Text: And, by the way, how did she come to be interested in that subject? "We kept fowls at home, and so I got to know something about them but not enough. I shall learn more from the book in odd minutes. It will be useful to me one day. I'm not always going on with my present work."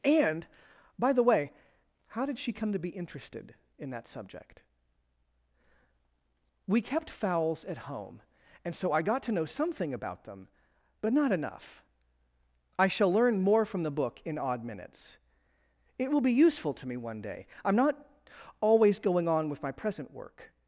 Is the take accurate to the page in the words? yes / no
yes